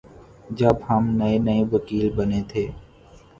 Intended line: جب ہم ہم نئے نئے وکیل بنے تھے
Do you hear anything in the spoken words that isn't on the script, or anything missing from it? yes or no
yes